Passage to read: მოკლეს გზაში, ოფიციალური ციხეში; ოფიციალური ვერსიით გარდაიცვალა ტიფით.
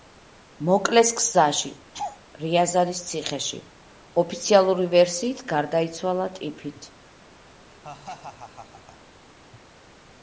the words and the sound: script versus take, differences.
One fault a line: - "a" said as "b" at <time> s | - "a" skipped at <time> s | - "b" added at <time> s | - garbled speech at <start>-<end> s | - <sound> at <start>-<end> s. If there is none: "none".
- laugh at 1.9-2.2 s
- "ოფიციალური" said as "რიაზანის" at 2.4 s
- laugh at 7.7-9.0 s